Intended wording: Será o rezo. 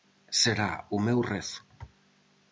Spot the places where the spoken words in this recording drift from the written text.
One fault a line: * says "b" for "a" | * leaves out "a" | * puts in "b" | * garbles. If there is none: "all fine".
* puts in "meu"